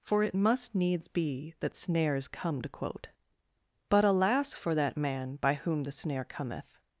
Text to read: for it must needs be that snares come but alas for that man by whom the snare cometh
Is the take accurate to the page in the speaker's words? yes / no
no